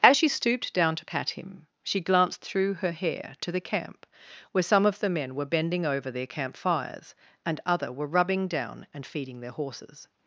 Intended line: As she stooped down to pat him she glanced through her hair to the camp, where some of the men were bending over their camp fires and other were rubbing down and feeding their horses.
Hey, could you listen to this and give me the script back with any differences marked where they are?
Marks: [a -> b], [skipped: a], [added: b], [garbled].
As she stooped down to pat him she glanced through her hair to the camp, where some of the men were bending over their camp fires and other were rubbing down and feeding their horses.